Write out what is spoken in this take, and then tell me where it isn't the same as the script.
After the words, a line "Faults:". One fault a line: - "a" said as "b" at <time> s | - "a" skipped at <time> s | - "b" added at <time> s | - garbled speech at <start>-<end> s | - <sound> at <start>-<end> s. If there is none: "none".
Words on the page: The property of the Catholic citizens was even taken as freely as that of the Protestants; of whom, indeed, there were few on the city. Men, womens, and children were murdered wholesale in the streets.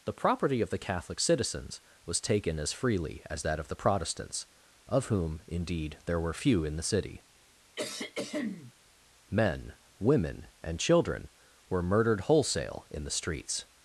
The property of the Catholic citizens was taken as freely as that of the Protestants; of whom, indeed, there were few in the city. Men, women, and children were murdered wholesale in the streets.
Faults:
- "even" skipped at 2.2 s
- "on" said as "in" at 6.6 s
- throat clearing at 7.8-8.7 s
- "womens" said as "women" at 10.0 s